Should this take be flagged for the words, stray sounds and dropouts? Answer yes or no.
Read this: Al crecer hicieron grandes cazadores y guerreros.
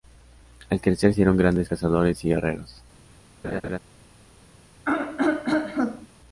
yes